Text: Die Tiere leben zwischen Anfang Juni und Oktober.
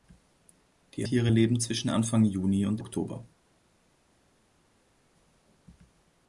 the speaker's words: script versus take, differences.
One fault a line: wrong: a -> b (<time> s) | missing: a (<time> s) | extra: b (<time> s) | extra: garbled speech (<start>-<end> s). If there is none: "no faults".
no faults